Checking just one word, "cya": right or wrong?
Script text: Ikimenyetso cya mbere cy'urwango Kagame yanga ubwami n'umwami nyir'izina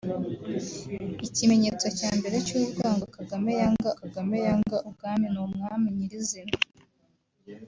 right